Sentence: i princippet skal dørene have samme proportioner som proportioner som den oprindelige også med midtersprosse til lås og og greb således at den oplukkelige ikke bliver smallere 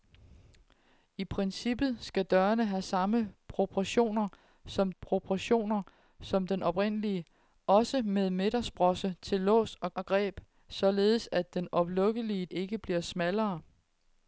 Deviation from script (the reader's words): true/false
false